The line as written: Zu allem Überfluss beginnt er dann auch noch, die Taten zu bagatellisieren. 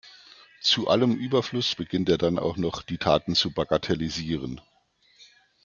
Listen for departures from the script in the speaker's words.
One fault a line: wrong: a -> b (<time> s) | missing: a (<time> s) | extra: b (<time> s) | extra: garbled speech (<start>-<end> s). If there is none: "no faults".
no faults